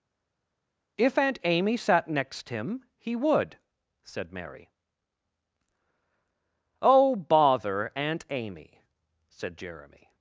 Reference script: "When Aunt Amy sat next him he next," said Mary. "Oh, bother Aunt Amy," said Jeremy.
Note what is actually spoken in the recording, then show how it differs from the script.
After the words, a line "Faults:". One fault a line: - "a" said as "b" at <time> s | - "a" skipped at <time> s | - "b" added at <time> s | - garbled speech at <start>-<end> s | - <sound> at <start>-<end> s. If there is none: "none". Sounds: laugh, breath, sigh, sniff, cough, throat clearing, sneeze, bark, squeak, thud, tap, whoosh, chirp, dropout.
"If Aunt Amy sat next him he would," said Mary. "Oh, bother Aunt Amy," said Jeremy.
Faults:
- "When" said as "If" at 1.0 s
- "next" said as "would" at 3.2 s